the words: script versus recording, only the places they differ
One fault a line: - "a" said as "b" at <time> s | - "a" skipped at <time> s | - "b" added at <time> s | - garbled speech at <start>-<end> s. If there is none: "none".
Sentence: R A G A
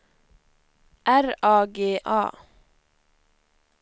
none